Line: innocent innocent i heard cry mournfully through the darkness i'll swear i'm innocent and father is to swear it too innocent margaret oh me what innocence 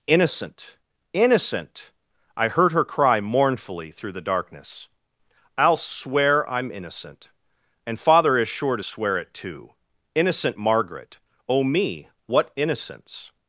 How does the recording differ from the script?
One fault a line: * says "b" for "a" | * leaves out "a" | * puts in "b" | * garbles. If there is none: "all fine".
* puts in "her"
* puts in "sure"